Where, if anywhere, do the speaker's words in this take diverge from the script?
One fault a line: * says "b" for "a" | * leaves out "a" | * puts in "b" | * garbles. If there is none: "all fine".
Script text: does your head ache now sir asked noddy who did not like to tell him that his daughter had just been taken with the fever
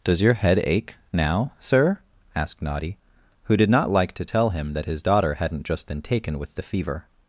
* says "hadn't" for "had"